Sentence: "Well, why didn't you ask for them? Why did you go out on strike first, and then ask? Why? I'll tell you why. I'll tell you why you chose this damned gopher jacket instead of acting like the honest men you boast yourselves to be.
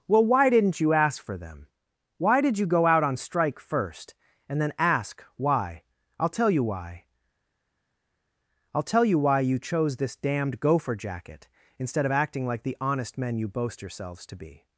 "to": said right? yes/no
yes